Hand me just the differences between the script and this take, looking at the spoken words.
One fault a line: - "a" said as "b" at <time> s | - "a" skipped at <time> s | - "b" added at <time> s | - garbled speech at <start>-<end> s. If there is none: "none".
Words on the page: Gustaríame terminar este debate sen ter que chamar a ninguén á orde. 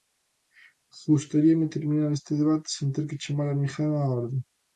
none